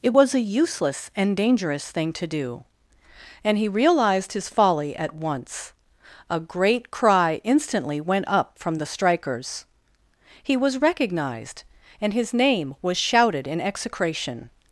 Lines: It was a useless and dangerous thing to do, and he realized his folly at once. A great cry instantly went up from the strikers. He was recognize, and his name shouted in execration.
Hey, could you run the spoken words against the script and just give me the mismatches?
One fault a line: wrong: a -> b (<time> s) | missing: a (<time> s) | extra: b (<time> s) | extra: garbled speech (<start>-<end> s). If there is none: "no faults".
wrong: recognize -> recognized (10.8 s)
extra: was (12.8 s)